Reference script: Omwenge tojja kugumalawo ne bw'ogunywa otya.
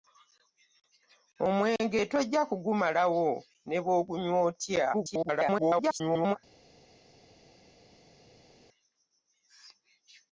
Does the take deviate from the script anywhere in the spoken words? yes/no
yes